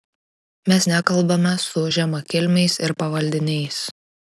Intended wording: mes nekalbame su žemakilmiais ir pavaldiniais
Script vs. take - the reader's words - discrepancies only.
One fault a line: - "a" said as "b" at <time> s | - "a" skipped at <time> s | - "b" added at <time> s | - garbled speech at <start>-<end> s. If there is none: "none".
none